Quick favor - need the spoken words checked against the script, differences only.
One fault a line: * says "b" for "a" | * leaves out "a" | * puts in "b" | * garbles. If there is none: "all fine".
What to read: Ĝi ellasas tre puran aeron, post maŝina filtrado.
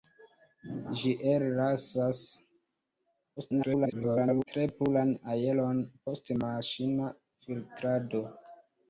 * garbles